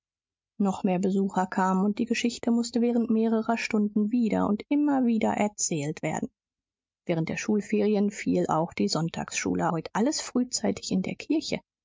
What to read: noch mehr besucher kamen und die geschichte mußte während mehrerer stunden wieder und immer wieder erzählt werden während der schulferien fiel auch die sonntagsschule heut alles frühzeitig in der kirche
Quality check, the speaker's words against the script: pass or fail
pass